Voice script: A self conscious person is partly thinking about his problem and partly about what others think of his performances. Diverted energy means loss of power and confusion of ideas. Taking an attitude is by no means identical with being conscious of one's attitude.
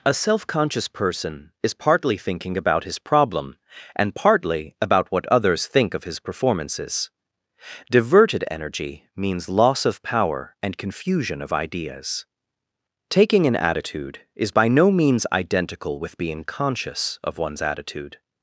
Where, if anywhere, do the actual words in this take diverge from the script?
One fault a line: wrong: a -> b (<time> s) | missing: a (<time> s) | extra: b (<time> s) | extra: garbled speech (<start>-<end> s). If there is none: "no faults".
no faults